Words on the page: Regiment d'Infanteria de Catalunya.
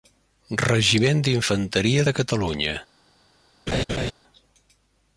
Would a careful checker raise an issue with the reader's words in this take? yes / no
no